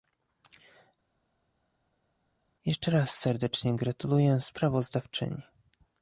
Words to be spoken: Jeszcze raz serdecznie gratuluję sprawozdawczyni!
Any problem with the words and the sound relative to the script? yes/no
no